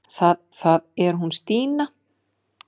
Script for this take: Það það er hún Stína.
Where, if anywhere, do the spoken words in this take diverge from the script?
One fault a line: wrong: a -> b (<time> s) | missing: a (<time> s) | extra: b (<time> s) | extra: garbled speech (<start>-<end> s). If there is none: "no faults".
no faults